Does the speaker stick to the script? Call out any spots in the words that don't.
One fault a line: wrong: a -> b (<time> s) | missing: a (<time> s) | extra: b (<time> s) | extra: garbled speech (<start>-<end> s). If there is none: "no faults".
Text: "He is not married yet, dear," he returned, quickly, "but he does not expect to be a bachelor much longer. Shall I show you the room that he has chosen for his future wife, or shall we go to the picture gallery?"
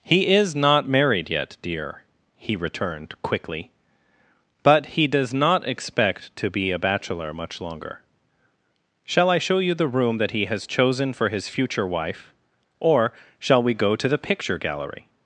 no faults